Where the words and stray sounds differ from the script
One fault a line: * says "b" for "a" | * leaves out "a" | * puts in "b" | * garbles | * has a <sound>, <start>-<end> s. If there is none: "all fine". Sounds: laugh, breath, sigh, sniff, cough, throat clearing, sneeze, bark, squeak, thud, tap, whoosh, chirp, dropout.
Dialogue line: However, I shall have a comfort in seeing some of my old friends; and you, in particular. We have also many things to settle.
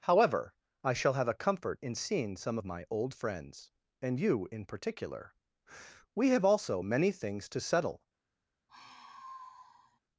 * has a sigh, 8.7-10.0 s